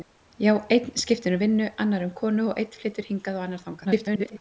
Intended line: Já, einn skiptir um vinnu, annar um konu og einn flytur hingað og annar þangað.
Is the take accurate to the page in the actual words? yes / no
no